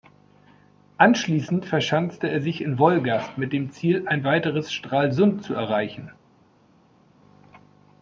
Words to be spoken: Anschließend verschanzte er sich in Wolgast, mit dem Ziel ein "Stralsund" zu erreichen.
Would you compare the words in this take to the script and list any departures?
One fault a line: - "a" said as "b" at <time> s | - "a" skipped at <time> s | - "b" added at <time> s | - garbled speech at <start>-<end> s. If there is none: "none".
- "weiteres" added at 4.2 s